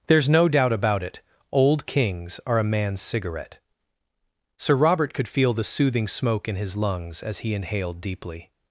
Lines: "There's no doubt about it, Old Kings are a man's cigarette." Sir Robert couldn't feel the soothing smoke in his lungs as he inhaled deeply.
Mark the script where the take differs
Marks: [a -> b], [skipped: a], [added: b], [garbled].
"There's no doubt about it, Old Kings are a man's cigarette." Sir Robert [couldn't -> could] feel the soothing smoke in his lungs as he inhaled deeply.